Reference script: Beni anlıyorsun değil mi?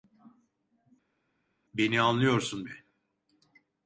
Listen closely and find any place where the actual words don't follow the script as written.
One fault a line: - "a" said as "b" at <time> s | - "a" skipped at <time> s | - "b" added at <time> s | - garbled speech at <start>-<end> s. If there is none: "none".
- "değil" skipped at 2.7 s